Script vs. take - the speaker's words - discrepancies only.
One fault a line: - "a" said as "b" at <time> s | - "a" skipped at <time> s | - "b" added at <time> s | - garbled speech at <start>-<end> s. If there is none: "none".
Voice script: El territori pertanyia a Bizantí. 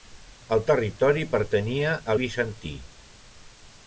none